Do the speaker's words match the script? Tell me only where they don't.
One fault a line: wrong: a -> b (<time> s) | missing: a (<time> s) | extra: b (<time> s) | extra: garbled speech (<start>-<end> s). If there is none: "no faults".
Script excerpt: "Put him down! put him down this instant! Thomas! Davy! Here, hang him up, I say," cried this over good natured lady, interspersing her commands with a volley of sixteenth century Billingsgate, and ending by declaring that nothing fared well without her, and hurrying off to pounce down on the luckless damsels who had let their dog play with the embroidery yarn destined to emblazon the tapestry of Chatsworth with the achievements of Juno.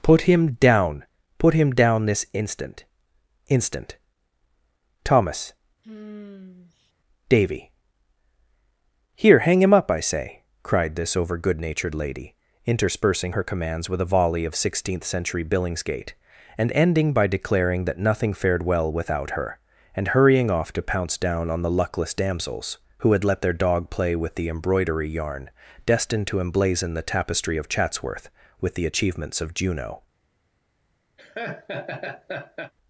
extra: instant (3.5 s)